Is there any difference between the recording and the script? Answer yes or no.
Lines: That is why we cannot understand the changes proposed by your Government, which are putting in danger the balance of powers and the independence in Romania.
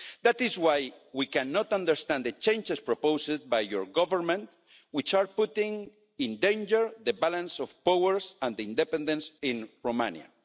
no